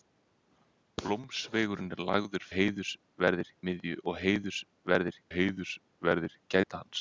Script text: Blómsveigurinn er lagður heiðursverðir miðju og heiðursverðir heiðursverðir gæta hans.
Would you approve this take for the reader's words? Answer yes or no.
yes